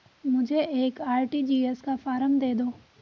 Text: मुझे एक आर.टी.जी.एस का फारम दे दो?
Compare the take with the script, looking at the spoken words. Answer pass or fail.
pass